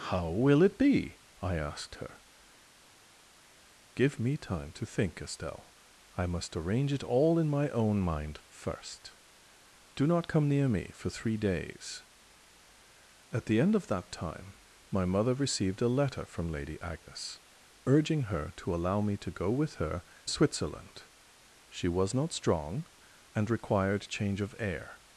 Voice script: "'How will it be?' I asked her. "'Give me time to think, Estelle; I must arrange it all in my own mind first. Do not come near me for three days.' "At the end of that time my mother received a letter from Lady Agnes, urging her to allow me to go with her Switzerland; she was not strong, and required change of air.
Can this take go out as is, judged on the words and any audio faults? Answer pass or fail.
pass